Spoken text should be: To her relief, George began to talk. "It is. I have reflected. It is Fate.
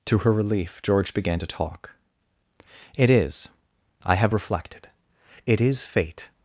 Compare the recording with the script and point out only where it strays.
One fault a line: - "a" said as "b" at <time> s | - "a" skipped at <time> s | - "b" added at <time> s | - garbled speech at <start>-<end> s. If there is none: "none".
none